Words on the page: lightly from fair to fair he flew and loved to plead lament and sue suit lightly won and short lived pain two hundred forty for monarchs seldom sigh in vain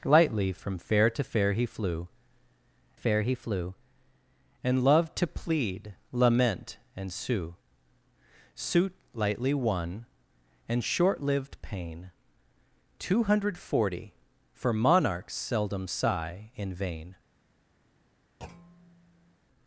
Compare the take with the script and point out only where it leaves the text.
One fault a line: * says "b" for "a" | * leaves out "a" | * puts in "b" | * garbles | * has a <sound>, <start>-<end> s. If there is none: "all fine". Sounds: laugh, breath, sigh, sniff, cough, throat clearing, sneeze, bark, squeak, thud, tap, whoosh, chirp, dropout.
* puts in "fair he flew"
* has a thud, 18.4-19.4 s